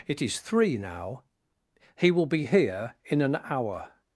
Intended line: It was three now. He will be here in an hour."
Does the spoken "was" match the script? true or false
false